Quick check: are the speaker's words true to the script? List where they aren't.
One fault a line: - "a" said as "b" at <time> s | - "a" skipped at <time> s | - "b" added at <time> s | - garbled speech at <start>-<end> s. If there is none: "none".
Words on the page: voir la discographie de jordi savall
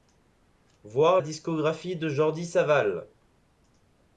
- "la" skipped at 1.2 s